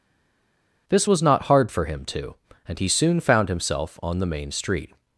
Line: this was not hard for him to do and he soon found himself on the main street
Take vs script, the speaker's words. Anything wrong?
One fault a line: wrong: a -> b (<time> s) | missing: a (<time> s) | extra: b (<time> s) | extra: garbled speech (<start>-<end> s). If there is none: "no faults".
missing: do (2.4 s)